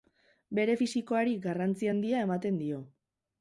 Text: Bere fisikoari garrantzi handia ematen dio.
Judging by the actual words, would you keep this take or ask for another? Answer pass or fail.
pass